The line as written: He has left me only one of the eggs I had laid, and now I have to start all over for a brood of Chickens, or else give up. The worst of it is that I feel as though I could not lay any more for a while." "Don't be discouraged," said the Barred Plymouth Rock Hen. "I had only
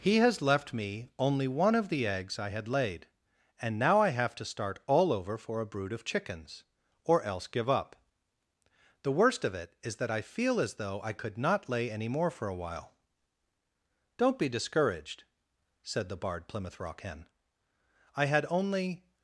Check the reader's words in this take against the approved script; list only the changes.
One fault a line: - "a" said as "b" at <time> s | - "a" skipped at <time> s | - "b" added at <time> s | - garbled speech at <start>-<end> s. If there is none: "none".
none